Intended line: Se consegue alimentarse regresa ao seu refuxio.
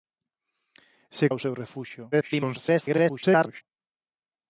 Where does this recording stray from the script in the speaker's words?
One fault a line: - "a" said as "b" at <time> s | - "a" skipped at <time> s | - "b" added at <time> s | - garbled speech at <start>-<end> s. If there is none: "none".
- "consegue alimentarse regresa" skipped at 1.3 s
- garbled speech at 2.1-3.6 s